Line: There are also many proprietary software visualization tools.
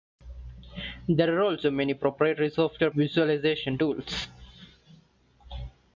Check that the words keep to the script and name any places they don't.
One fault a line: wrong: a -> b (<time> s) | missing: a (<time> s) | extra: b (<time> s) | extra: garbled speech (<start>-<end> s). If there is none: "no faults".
no faults